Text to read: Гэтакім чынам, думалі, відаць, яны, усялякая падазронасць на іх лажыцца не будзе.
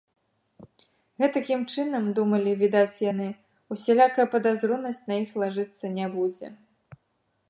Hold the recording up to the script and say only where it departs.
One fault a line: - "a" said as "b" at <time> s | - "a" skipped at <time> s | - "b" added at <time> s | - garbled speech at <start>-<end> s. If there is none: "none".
none